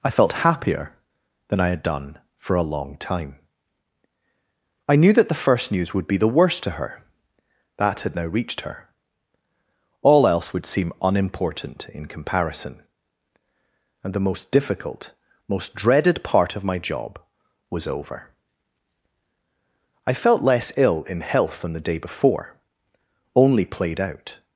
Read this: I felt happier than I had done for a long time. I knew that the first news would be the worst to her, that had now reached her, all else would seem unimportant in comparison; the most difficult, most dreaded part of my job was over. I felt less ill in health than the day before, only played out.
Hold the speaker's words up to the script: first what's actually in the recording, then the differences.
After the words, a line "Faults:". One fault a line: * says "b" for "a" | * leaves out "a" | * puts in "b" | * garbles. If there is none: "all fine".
I felt happier than I had done for a long time. I knew that the first news would be the worst to her, that had now reached her, all else would seem unimportant in comparison; and the most difficult, most dreaded part of my job was over. I felt less ill in health than the day before, only played out.
Faults:
* puts in "and"